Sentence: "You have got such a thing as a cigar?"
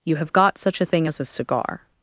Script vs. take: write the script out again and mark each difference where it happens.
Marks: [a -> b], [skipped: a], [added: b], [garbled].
"You have got such a thing as a cigar?"